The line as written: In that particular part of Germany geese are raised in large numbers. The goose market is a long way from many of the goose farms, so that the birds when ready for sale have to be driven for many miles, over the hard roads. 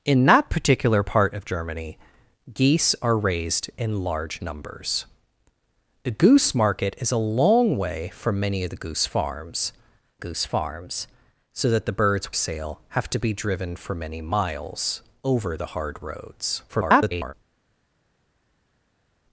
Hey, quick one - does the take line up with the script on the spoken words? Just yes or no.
no